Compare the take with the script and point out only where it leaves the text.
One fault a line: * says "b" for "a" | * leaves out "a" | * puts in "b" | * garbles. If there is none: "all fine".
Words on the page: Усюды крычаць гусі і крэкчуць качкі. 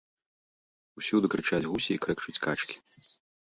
all fine